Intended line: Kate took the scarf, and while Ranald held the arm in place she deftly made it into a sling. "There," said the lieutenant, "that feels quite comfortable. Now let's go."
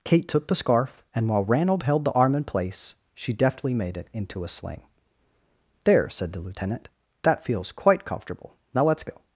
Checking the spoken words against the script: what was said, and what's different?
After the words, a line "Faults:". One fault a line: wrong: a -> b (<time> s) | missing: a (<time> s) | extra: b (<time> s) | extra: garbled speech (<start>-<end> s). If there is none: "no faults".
Kate took the scarf, and while Ranald held the arm in place she deftly made it into a sling. "There," said the lieutenant, "that feels quite comfortable. Now let's go."
Faults:
no faults